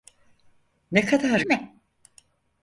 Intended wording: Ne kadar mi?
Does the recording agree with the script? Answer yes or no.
yes